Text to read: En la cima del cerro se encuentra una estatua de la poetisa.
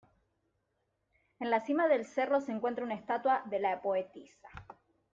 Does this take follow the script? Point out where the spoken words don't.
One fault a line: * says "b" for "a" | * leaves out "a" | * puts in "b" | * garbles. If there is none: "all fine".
all fine